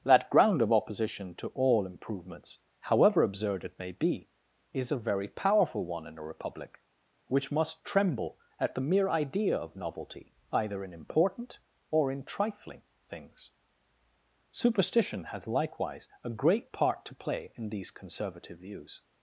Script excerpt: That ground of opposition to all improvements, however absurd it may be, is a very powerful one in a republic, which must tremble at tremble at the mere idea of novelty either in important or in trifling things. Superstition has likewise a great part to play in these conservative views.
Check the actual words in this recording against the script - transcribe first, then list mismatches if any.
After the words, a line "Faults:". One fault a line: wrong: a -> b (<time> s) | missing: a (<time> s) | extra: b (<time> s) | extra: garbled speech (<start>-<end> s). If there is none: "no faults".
That ground of opposition to all improvements, however absurd it may be, is a very powerful one in a republic, which must tremble at the mere idea of novelty either in important or in trifling things. Superstition has likewise a great part to play in these conservative views.
Faults:
missing: tremble at (8.8 s)